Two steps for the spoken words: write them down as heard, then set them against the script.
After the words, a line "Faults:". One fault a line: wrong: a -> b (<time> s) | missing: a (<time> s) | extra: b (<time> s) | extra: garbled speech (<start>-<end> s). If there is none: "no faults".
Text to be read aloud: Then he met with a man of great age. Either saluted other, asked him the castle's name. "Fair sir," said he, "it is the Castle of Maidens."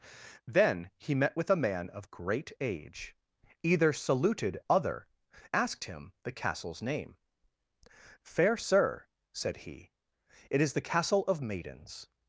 Then he met with a man of great age. Either saluted other, asked him the castle's name. "Fair sir," said he, "it is the Castle of Maidens."
Faults:
no faults